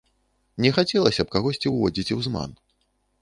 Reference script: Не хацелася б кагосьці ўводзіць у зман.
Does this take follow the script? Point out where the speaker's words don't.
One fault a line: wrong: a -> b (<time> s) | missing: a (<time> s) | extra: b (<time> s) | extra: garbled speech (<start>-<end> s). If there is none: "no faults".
no faults